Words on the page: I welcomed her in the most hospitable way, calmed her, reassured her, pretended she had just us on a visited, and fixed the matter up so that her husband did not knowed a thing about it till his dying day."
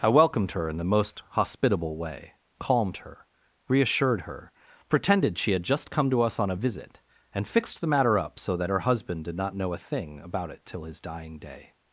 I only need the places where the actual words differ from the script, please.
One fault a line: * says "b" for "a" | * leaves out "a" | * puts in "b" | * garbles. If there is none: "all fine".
* puts in "come to"
* says "visit" for "visited"
* says "know" for "knowed"